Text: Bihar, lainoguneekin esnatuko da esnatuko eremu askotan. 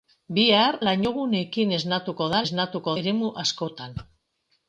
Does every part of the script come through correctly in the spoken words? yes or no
yes